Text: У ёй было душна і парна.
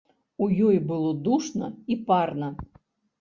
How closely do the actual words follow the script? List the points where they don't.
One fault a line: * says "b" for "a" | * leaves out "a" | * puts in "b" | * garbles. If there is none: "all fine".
all fine